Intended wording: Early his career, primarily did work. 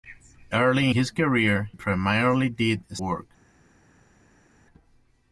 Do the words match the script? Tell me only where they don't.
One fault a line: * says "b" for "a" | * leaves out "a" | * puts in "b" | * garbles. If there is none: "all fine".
all fine